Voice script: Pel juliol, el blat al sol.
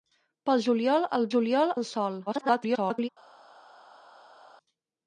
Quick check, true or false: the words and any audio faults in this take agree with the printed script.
false